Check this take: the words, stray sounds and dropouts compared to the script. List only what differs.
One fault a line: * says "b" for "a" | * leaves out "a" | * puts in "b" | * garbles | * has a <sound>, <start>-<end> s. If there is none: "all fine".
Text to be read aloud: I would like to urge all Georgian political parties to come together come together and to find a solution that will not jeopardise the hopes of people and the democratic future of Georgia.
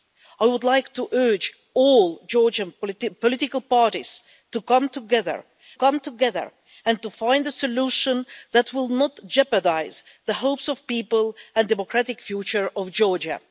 all fine